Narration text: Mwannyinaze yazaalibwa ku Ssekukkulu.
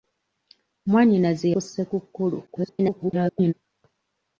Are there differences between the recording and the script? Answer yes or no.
yes